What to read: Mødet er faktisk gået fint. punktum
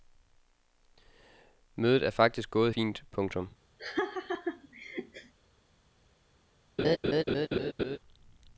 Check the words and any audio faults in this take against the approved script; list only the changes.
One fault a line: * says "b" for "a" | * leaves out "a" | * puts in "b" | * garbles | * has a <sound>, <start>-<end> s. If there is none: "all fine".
* has a laugh, 3.8-5.3 s
* has a laugh, 6.8-8.0 s